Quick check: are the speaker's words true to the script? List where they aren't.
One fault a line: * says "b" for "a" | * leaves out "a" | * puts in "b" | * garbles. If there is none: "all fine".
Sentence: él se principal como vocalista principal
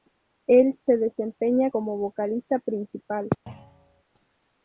* says "desempeña" for "principal"